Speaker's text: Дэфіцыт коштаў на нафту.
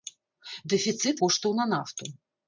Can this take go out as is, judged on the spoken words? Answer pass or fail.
pass